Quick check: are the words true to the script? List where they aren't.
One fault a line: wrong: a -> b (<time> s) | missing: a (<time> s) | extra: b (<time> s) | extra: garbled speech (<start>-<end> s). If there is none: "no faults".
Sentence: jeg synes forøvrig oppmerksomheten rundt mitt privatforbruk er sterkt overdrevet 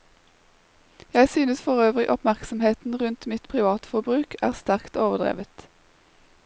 no faults